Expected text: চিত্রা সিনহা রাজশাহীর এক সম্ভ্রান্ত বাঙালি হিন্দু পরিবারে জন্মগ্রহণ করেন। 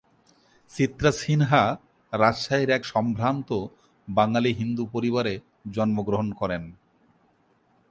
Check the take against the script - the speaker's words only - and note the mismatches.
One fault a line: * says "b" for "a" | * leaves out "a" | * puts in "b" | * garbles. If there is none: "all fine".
all fine